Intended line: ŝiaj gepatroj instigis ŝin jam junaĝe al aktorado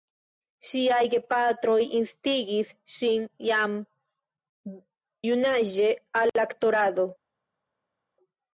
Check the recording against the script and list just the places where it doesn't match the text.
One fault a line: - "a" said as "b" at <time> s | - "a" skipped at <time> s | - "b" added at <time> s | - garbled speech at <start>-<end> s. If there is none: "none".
none